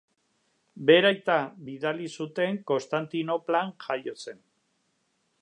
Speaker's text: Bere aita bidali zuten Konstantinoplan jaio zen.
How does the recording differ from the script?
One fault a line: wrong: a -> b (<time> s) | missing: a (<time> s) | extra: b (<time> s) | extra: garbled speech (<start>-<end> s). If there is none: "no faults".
no faults